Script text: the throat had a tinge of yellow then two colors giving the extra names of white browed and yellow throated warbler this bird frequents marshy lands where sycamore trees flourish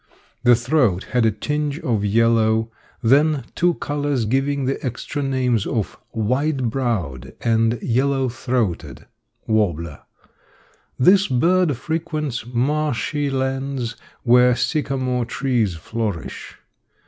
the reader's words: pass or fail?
pass